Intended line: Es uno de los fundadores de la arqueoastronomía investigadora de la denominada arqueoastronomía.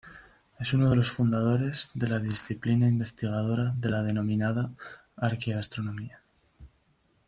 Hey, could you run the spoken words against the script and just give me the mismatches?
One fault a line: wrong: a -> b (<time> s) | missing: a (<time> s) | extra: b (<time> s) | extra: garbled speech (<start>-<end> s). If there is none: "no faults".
wrong: arqueoastronomía -> disciplina (2.2 s)